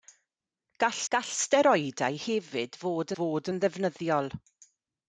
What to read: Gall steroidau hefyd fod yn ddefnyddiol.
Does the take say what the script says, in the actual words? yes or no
no